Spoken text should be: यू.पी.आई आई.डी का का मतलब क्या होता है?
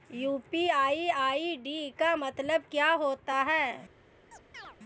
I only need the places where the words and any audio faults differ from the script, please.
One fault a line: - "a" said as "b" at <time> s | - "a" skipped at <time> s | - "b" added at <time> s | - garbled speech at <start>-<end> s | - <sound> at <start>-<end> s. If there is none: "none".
- "का" skipped at 2.1 s
- chirp at 4.3-4.8 s